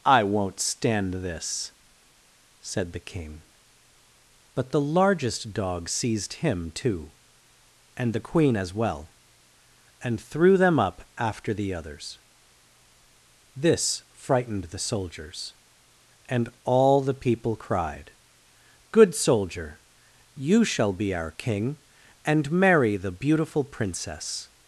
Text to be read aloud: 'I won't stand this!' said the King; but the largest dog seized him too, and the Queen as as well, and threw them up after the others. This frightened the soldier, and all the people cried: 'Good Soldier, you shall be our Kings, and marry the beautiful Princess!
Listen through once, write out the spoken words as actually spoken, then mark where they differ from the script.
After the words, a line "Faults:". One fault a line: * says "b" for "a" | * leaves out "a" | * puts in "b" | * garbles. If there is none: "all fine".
'I won't stand this!' said the King; but the largest dog seized him too, and the Queen as well, and threw them up after the others. This frightened the soldiers, and all the people cried: 'Good Soldier, you shall be our King, and marry the beautiful Princess!
Faults:
* leaves out "as"
* says "soldiers" for "soldier"
* says "King" for "Kings"